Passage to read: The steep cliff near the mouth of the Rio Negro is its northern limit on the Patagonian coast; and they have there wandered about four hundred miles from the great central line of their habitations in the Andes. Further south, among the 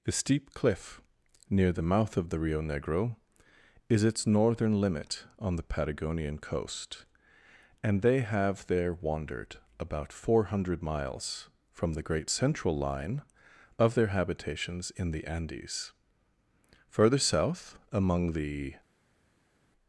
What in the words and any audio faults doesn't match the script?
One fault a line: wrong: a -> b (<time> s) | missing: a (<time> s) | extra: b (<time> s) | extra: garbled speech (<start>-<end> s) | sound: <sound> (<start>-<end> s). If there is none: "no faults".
no faults